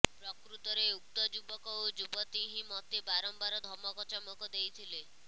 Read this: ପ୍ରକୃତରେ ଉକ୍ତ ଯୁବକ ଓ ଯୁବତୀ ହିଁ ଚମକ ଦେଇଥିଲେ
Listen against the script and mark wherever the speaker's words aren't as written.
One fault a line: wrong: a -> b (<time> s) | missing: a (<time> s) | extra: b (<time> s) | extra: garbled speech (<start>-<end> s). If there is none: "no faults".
extra: ମୋତେ ବାରମ୍ବାର ଧମକ (2.7 s)